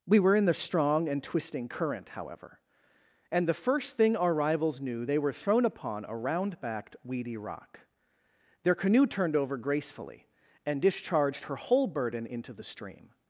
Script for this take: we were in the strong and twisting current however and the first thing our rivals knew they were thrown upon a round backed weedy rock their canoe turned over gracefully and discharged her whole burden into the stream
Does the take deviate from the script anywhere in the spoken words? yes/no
no